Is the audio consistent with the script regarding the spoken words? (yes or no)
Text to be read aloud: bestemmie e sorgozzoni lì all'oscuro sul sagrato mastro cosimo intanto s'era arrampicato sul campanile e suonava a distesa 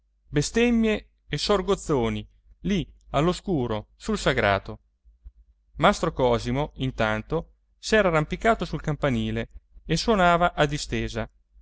yes